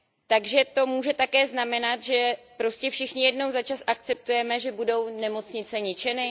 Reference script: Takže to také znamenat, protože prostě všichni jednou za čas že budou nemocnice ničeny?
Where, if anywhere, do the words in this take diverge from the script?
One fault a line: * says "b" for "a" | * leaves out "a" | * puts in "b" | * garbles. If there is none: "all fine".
* puts in "může"
* says "že" for "protože"
* puts in "akceptujeme"